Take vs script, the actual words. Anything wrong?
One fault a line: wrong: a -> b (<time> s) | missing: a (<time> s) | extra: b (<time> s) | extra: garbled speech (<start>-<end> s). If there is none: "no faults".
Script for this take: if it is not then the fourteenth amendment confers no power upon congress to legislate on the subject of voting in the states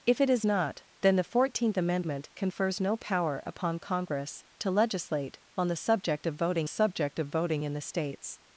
extra: subject of voting (6.7 s)